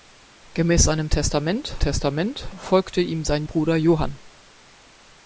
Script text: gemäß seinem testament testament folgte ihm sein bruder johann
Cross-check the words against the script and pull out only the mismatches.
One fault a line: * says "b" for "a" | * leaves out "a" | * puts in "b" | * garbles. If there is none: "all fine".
all fine